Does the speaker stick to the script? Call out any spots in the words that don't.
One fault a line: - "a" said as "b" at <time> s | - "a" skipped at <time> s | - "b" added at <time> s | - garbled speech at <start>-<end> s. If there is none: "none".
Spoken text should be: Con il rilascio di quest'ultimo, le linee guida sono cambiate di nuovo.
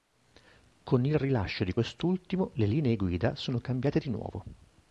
none